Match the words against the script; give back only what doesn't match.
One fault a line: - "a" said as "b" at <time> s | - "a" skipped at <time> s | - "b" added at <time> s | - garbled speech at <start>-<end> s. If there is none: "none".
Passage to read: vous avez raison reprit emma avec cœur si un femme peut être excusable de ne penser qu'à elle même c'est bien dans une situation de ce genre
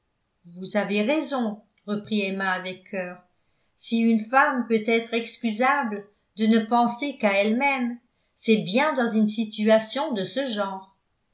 - "un" said as "une" at 4.0 s